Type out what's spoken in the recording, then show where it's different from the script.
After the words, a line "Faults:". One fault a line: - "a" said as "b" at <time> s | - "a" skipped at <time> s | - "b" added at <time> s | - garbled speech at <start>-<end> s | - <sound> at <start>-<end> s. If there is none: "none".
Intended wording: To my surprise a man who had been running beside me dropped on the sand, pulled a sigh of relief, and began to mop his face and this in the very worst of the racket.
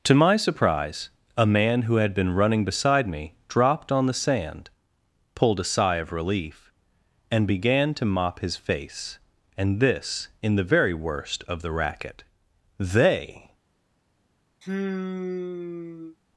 To my surprise a man who had been running beside me dropped on the sand, pulled a sigh of relief, and began to mop his face and this in the very worst of the racket. 'They
Faults:
- "They" added at 12.8 s
- sigh at 14.6-16.2 s